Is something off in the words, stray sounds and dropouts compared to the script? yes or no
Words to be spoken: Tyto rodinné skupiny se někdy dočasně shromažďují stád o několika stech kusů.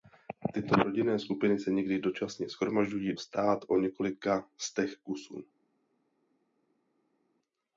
no